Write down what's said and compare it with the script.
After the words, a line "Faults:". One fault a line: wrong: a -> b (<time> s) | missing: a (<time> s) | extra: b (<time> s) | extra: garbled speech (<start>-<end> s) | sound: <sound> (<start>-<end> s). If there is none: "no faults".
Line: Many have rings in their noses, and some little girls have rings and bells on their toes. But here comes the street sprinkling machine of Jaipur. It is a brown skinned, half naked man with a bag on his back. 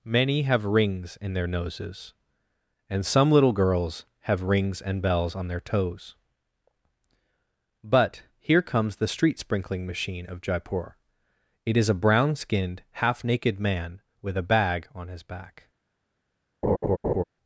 Many have rings in their noses, and some little girls have rings and bells on their toes. But here comes the street sprinkling machine of Jaipur. It is a brown skinned, half naked man with a bag on his back.
Faults:
sound: laugh (16.6-17.2 s)